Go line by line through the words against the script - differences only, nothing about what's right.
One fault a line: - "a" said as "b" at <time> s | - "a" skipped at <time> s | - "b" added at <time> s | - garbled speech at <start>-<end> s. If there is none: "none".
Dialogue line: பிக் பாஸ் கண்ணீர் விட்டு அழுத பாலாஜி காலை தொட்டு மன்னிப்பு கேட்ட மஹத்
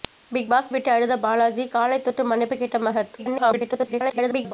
- "கண்ணீர்" skipped at 0.7 s
- garbled speech at 3.2-4.5 s